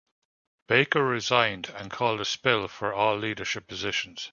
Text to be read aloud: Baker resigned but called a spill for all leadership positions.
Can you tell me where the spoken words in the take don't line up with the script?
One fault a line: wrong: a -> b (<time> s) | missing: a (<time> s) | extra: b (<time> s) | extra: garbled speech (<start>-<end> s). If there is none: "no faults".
wrong: but -> and (1.7 s)